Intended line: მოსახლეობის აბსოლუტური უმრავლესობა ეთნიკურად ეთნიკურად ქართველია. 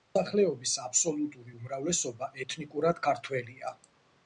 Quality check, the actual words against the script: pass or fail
fail